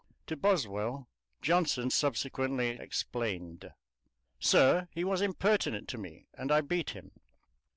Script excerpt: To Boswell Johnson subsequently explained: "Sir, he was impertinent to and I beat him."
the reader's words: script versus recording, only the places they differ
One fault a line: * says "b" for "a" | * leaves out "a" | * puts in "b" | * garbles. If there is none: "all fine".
* puts in "me"